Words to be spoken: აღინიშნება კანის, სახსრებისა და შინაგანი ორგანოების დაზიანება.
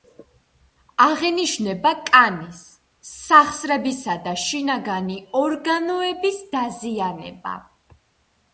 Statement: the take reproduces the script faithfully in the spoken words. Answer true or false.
true